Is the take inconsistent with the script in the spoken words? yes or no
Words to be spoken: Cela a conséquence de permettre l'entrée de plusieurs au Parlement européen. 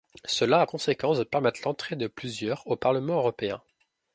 no